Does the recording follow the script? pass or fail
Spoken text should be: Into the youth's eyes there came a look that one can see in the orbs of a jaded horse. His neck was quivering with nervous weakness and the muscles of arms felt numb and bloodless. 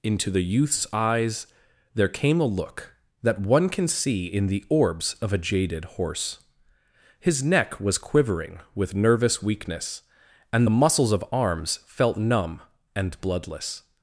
pass